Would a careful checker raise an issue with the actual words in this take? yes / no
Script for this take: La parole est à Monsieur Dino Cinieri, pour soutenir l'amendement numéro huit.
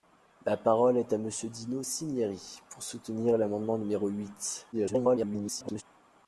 yes